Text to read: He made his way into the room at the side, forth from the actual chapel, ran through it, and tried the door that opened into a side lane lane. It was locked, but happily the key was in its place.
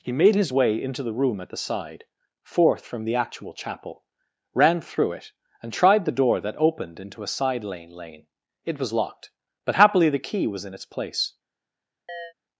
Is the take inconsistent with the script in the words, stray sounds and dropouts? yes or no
yes